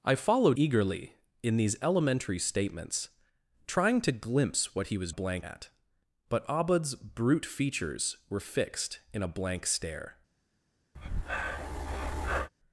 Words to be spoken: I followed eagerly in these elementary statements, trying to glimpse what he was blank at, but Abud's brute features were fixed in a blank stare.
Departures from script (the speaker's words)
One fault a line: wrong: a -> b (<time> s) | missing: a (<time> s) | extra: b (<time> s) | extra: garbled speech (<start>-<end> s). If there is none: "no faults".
no faults